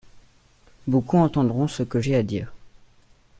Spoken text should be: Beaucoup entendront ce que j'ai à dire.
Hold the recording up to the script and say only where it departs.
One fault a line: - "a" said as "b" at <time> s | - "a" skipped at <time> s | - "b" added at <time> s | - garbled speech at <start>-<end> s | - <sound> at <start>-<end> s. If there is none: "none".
none